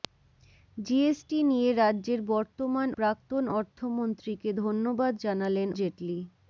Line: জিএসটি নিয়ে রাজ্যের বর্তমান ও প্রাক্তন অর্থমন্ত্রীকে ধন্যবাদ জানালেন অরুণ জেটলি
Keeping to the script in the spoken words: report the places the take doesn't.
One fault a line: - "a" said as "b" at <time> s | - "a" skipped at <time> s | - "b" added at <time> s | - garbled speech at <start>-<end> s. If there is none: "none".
- "ও" skipped at 2.9 s
- "অরুণ" skipped at 5.7 s